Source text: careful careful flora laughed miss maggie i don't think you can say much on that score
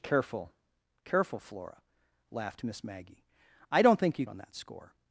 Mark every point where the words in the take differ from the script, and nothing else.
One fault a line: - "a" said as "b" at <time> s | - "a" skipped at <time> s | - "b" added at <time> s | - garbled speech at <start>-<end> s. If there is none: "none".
- "can say much" skipped at 4.2 s